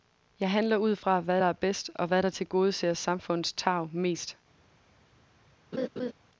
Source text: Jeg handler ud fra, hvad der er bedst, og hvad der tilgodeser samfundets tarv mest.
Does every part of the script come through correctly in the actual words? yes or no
yes